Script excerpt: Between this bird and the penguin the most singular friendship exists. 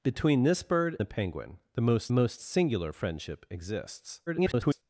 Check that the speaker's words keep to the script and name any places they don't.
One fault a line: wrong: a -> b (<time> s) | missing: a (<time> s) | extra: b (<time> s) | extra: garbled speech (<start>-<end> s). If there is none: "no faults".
missing: and (1.0 s)
extra: most (2.1 s)
extra: garbled speech (4.3-4.8 s)